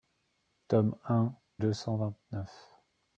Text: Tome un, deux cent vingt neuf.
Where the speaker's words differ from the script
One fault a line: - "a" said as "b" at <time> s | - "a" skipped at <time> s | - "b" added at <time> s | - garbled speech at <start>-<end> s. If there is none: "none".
none